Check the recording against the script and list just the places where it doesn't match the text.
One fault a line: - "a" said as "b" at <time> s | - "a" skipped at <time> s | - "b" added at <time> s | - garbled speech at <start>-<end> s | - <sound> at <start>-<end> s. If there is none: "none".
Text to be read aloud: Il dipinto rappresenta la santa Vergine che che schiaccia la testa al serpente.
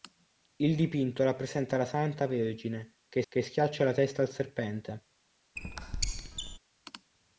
- squeak at 5.6-6.6 s